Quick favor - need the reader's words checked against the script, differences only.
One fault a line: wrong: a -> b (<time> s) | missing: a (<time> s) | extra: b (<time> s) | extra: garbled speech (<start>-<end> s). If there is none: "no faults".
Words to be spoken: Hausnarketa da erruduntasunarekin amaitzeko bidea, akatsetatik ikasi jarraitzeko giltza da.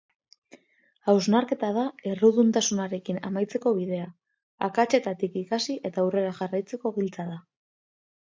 extra: eta aurrera (5.9 s)